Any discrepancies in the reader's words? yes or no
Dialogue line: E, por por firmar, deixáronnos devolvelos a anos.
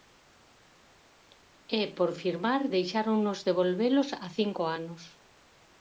yes